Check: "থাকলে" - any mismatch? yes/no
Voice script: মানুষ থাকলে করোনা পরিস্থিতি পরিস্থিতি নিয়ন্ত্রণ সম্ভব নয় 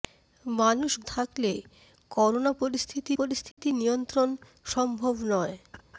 no